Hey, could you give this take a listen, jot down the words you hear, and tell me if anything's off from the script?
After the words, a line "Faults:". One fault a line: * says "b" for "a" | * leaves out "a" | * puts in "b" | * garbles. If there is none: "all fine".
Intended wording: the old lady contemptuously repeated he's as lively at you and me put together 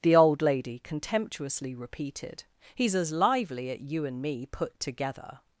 the old lady contemptuously repeated he's as lively at you and me put together
Faults:
all fine